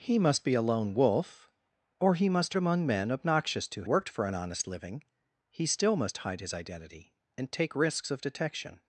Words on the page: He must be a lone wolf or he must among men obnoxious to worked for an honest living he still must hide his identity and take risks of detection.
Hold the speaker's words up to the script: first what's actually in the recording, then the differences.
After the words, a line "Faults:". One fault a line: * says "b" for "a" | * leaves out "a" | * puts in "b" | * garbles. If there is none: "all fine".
He must be a lone wolf or he must among men obnoxious to worked for an honest living he still must hide his identity and take risks of detection.
Faults:
all fine